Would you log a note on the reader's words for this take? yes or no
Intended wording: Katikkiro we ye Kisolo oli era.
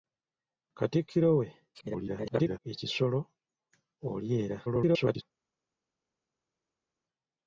yes